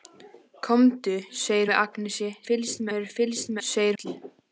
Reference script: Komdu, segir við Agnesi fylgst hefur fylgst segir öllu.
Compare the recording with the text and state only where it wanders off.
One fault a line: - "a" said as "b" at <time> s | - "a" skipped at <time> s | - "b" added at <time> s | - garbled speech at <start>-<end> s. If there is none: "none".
none